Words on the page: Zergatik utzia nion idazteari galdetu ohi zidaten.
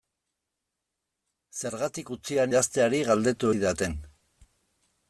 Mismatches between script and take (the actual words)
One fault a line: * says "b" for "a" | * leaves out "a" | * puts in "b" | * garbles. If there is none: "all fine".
* leaves out "nion"
* leaves out "ohi"